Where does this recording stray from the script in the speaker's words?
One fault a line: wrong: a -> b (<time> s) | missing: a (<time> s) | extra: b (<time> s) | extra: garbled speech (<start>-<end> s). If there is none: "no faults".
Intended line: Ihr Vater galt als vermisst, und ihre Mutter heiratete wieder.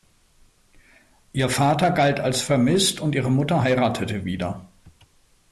no faults